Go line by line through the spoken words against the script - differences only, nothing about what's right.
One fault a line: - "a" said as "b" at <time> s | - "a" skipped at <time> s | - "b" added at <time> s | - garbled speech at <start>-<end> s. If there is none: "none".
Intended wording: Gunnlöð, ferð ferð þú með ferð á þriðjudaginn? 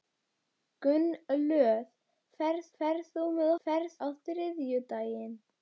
none